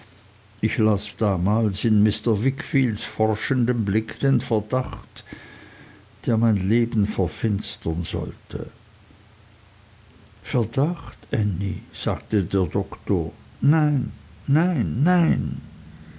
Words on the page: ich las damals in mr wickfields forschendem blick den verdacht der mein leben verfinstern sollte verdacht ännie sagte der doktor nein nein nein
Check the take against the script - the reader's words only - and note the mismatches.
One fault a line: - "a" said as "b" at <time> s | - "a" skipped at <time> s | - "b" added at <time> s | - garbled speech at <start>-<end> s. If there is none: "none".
none